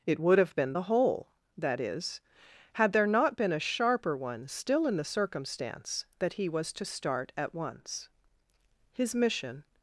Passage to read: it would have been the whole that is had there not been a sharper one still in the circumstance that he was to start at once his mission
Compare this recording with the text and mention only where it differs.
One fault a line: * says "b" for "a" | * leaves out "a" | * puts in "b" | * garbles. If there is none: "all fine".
all fine